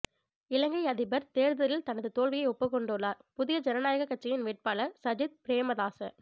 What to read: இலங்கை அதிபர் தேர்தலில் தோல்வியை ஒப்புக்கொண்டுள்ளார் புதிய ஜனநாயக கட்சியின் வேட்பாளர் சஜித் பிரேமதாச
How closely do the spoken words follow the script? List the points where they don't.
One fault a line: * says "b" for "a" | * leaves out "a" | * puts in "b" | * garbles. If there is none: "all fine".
* puts in "தனது"